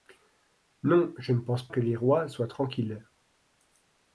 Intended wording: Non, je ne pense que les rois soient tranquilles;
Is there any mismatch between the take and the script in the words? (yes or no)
no